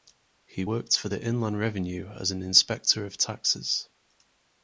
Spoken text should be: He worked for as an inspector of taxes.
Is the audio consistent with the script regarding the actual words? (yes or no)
no